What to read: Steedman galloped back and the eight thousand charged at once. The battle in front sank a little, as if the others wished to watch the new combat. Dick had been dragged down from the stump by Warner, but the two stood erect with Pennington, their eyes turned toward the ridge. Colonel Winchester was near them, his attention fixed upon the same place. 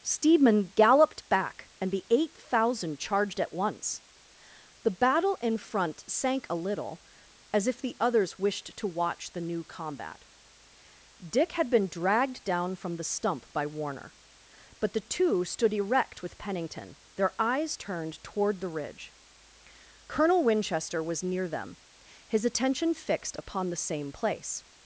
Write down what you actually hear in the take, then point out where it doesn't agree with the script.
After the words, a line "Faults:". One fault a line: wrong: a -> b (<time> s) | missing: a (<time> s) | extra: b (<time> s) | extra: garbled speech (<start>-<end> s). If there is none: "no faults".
Steedman galloped back and the eight thousand charged at once. The battle in front sank a little, as if the others wished to watch the new combat. Dick had been dragged down from the stump by Warner, but the two stood erect with Pennington, their eyes turned toward the ridge. Colonel Winchester was near them, his attention fixed upon the same place.
Faults:
no faults